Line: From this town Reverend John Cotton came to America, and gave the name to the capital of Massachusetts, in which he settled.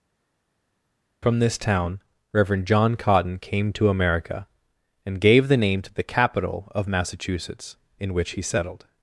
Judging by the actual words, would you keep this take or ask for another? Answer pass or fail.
pass